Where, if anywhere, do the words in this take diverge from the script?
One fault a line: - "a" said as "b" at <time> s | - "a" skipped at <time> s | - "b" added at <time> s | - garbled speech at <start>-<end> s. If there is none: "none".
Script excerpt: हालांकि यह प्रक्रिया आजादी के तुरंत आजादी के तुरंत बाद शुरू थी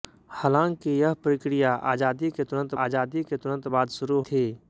none